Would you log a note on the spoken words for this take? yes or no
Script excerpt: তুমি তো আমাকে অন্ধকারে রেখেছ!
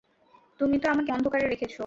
no